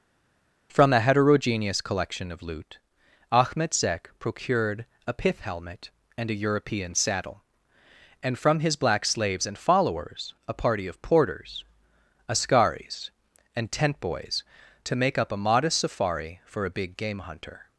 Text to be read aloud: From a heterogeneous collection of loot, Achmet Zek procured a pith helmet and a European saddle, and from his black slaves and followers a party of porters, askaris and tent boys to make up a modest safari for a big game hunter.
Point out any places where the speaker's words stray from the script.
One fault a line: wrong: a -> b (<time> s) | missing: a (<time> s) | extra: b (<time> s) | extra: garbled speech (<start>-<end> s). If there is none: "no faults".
no faults